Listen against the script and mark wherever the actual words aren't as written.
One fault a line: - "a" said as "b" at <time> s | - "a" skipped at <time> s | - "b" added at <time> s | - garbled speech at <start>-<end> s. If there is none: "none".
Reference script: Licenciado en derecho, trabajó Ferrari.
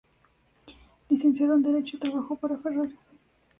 - "para" added at 2.4 s